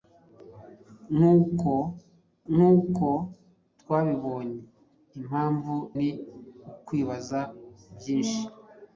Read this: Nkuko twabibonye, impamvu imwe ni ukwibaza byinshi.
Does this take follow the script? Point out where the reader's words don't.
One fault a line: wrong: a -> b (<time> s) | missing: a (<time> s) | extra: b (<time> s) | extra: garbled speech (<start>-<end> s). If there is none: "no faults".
extra: nkuko (2.5 s)
missing: imwe (5.7 s)